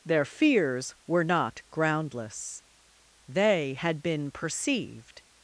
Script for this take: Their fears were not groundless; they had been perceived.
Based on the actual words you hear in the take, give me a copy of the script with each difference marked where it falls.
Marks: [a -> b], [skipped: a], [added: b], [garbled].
Their fears were not groundless; they had been perceived.